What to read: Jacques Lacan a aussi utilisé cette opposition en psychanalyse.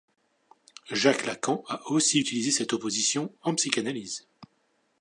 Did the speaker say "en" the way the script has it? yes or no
yes